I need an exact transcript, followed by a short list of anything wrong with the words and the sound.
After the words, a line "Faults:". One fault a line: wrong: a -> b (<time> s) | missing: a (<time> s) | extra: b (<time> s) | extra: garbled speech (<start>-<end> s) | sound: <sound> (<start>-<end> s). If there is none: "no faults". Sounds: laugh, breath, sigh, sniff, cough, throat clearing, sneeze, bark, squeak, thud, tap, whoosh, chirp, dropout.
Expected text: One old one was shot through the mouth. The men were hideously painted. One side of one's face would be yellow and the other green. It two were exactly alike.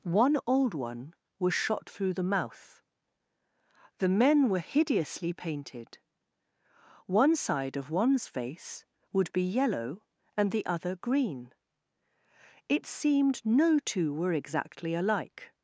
One old one was shot through the mouth. The men were hideously painted. One side of one's face would be yellow and the other green. It seemed no two were exactly alike.
Faults:
extra: seemed no (12.9 s)